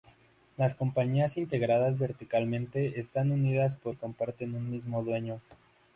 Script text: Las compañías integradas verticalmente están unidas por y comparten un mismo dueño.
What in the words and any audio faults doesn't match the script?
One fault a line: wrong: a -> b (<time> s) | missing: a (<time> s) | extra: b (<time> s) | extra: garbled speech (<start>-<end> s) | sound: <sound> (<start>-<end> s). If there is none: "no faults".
no faults